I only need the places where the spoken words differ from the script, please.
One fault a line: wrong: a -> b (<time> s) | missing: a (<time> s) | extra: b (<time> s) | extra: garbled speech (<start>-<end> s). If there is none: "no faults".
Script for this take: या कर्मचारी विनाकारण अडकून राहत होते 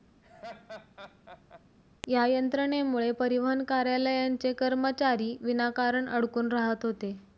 extra: यंत्रणेमुळे परिवहन कार्यालयांचे (2.3 s)